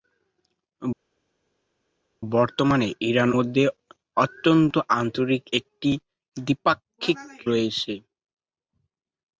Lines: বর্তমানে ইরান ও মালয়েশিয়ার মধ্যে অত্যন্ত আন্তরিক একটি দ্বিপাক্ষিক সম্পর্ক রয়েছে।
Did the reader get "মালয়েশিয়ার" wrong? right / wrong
wrong